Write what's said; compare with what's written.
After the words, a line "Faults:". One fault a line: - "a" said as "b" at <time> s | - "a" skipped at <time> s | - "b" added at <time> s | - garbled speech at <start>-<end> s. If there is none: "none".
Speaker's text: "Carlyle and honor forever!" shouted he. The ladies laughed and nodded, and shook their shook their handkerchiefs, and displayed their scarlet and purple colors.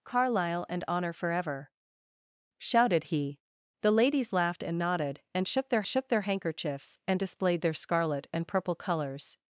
"Carlyle and honor forever!" shouted he. The ladies laughed and nodded, and shook their shook their handkerchiefs, and displayed their scarlet and purple colors.
Faults:
none